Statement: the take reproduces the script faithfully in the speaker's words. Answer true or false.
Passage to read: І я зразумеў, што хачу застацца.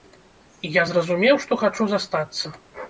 true